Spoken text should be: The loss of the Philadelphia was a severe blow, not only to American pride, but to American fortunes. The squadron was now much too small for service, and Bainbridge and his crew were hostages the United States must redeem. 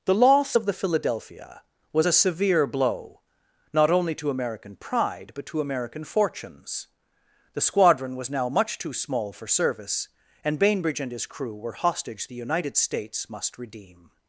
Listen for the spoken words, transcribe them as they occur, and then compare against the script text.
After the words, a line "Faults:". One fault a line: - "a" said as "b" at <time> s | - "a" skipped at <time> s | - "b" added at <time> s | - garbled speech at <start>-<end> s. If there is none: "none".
The loss of the Philadelphia was a severe blow, not only to American pride, but to American fortunes. The squadron was now much too small for service, and Bainbridge and his crew were hostage the United States must redeem.
Faults:
- "hostages" said as "hostage" at 11.7 s